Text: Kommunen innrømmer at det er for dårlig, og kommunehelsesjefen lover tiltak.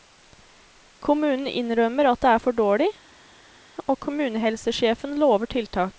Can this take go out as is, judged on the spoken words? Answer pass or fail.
pass